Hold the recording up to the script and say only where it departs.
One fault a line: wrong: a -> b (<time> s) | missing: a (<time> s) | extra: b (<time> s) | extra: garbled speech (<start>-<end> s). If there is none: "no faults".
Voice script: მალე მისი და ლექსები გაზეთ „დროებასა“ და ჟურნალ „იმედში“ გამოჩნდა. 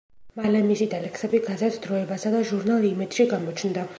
no faults